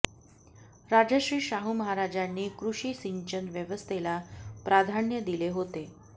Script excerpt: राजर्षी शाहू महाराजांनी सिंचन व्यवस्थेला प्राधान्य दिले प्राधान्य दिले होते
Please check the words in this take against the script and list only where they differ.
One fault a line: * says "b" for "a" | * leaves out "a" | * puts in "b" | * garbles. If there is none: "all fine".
* puts in "कृषी"
* leaves out "प्राधान्य दिले"